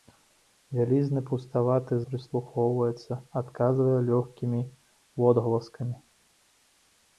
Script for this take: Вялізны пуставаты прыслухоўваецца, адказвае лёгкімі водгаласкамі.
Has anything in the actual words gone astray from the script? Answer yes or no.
no